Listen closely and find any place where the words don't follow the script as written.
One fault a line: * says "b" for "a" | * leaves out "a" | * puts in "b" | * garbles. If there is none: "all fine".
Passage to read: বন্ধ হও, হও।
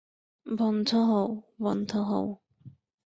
* puts in "বন্ধ"